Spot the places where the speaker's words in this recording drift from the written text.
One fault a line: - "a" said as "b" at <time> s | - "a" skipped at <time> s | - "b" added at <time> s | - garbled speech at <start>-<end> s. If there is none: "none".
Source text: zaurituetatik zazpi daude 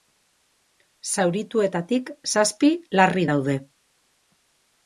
- "larri" added at 3.0 s